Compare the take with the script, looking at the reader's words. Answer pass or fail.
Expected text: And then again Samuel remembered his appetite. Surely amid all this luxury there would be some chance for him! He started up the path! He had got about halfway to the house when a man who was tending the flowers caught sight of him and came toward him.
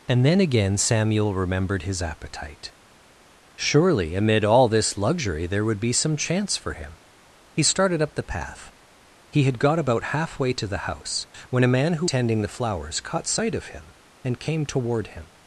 fail